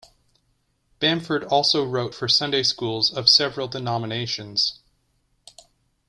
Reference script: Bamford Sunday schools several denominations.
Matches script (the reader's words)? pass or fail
fail